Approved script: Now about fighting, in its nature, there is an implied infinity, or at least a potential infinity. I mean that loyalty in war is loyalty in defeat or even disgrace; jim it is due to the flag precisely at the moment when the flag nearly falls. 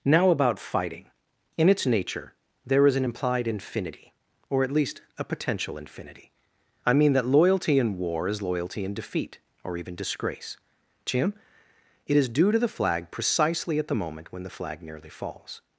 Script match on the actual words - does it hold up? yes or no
yes